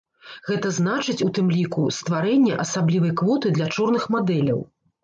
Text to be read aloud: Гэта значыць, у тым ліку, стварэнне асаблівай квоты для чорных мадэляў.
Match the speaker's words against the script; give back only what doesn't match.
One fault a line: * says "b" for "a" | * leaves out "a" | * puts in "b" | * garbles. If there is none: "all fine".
all fine